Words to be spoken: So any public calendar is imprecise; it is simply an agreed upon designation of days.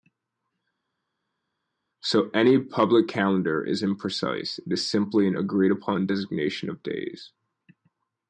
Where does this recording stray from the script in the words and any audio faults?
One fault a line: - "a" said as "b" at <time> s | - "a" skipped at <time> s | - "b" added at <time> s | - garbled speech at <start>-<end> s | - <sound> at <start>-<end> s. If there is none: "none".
none